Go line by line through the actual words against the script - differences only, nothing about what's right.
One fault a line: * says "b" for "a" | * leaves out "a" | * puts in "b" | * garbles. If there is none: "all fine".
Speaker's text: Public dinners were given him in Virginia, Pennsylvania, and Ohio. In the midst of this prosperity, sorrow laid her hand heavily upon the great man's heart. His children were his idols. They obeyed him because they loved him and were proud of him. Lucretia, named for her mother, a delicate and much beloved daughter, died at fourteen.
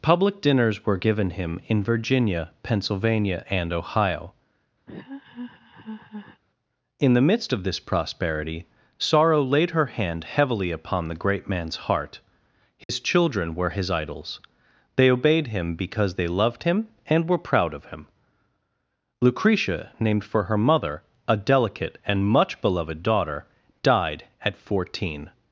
all fine